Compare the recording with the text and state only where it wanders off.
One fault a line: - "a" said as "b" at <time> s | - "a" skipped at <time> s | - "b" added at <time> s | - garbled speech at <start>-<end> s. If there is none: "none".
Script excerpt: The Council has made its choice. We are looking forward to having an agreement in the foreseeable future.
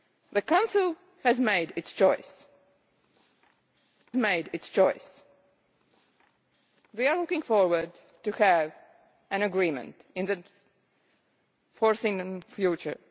- "made its choice" added at 4.2 s